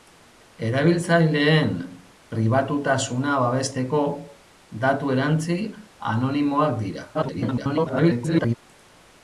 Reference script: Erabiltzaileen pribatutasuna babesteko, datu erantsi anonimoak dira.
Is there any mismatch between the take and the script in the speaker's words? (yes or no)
yes